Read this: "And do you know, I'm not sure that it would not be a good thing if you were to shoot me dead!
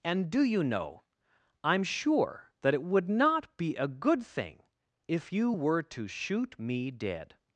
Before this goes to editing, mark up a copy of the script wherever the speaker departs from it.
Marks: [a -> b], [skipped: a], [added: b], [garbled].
"And do you know, I'm [skipped: not] sure that it would not be a good thing if you were to shoot me dead!